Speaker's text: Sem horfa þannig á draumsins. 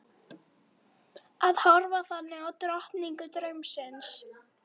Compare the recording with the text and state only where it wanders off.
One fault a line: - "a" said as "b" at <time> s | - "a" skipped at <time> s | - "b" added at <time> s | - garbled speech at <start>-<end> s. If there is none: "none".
- "Sem" said as "Að" at 1.5 s
- "drottningu" added at 2.7 s